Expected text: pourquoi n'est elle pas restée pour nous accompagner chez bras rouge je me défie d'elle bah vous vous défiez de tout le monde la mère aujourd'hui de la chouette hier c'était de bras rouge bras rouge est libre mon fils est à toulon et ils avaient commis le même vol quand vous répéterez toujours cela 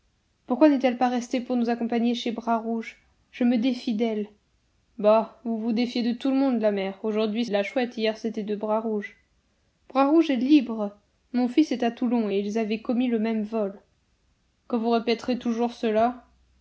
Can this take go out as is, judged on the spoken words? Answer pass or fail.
pass